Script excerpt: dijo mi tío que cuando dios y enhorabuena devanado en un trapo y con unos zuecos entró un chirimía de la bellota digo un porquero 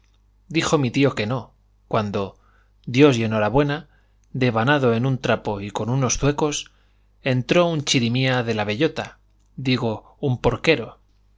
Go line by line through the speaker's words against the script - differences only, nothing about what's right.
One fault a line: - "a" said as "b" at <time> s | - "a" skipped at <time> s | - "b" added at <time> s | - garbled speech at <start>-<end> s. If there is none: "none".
- "no" added at 1.3 s